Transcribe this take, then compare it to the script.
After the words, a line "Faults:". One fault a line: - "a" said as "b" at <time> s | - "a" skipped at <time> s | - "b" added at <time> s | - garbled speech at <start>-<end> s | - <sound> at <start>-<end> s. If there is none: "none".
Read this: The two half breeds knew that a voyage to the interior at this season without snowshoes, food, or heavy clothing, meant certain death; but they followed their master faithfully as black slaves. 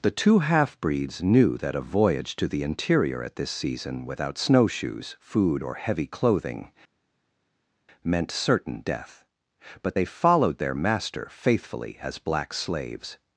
The two half breeds knew that a voyage to the interior at this season without snowshoes, food, or heavy clothing, meant certain death; but they followed their master faithfully as black slaves.
Faults:
none